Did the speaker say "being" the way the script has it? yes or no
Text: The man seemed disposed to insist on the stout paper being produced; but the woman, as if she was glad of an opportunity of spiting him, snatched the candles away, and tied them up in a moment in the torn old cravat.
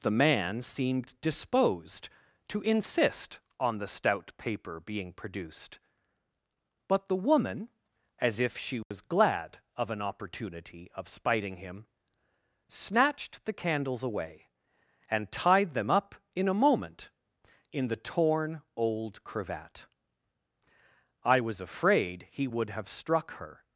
yes